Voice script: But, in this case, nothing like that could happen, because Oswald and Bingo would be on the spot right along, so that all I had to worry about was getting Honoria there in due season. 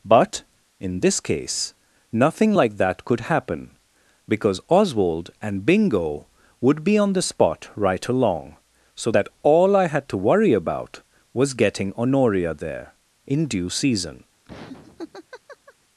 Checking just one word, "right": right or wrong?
right